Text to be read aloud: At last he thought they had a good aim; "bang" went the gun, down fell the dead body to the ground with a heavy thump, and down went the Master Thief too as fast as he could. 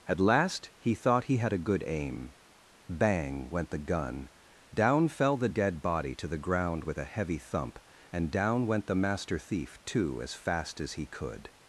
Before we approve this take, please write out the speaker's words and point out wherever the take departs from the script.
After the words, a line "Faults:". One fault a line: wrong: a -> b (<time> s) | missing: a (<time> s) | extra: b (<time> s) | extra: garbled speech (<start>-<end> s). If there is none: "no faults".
At last he thought he had a good aim; "bang" went the gun, down fell the dead body to the ground with a heavy thump, and down went the Master Thief too as fast as he could.
Faults:
wrong: they -> he (1.2 s)